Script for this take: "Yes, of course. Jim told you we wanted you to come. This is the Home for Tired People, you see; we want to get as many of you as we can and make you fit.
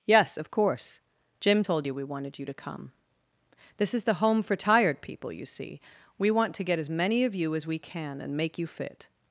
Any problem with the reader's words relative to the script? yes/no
no